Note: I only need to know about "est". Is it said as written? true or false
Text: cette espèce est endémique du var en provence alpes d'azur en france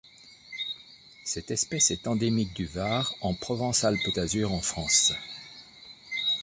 true